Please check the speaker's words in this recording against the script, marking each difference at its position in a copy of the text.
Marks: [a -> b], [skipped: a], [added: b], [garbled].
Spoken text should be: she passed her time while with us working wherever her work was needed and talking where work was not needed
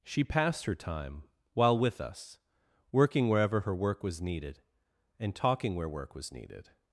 she passed her time while with us working wherever her work was needed and talking where work was [skipped: not] needed